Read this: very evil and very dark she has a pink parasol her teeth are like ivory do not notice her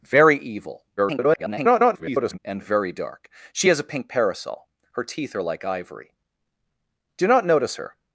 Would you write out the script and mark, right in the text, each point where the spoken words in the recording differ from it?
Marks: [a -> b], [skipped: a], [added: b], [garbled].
very evil [garbled] and very dark she has a pink parasol her teeth are like ivory do not notice her